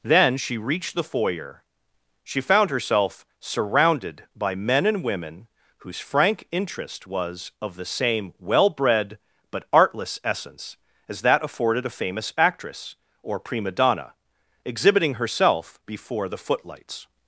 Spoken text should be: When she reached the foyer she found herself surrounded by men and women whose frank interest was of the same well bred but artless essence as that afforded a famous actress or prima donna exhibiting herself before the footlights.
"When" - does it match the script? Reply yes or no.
no